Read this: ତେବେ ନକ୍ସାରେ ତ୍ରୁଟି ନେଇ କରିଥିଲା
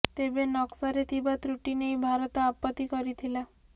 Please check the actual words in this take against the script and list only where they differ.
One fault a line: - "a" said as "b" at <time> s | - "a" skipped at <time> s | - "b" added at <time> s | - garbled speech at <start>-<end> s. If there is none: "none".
- "ଥିବା" added at 1.1 s
- "ଭାରତ ଆପତ୍ତି" added at 2.0 s